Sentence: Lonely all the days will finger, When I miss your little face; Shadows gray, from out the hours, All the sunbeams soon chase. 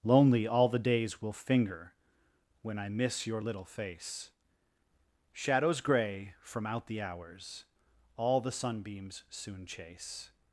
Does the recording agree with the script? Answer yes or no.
yes